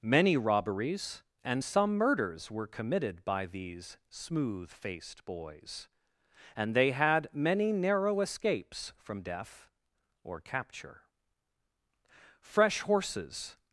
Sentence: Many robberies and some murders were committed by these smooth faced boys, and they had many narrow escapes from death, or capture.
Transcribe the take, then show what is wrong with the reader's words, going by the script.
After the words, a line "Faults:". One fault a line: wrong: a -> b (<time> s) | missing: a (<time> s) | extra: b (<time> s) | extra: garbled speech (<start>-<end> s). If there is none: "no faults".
Many robberies and some murders were committed by these smooth faced boys, and they had many narrow escapes from death, or capture. Fresh horses
Faults:
extra: Fresh horses (12.4 s)